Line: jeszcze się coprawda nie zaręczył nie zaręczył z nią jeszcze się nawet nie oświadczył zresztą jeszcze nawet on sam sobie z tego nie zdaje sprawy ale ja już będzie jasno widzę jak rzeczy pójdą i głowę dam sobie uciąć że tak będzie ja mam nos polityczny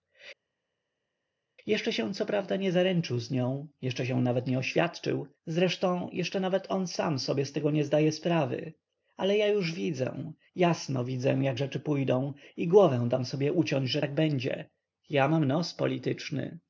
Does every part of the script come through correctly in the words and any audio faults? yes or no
no